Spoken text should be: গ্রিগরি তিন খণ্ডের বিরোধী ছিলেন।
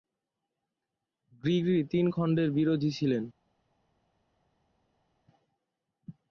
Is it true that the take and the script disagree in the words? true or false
false